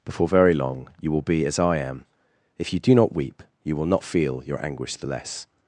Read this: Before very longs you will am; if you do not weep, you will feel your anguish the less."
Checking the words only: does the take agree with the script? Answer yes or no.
no